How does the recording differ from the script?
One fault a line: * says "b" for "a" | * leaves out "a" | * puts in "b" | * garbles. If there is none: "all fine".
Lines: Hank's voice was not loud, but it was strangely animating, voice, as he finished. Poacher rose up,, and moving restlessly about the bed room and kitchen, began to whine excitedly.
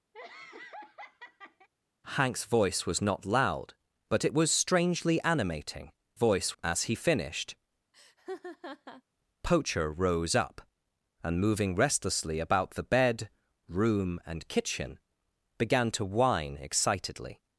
all fine